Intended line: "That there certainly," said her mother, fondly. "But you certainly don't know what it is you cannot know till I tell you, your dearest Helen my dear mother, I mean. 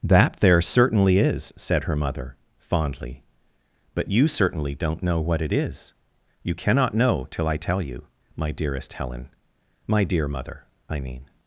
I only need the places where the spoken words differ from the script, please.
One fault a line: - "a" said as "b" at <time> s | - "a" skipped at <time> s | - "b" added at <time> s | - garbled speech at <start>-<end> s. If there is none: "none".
- "is" added at 1.2 s
- "your" said as "my" at 8.4 s